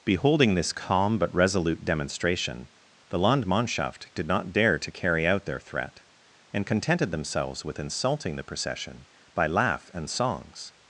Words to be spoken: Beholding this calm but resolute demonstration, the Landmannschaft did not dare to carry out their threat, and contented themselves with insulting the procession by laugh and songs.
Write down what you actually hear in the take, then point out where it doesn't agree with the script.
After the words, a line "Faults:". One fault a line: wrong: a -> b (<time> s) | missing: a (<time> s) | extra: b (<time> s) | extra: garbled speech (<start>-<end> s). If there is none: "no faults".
Beholding this calm but resolute demonstration, the Landmannschaft did not dare to carry out their threat, and contented themselves with insulting the procession by laugh and songs.
Faults:
no faults